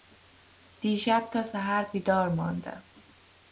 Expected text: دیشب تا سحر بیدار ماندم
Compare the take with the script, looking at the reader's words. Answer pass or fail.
pass